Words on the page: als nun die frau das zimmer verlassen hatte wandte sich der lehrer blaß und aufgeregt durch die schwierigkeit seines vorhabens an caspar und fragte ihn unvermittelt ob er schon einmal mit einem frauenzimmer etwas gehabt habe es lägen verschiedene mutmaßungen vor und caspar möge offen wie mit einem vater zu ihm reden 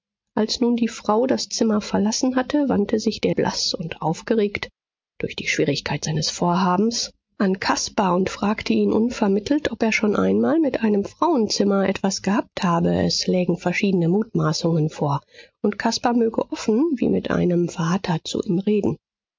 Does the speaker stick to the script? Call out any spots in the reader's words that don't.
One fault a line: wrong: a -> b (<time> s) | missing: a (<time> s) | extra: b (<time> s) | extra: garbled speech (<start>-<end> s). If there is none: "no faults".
missing: lehrer (3.4 s)